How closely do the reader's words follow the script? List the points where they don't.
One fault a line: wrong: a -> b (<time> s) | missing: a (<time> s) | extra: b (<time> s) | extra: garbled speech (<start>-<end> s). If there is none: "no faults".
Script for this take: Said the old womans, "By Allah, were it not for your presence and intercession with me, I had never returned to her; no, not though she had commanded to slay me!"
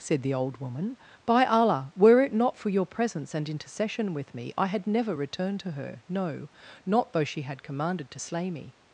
wrong: womans -> woman (0.6 s)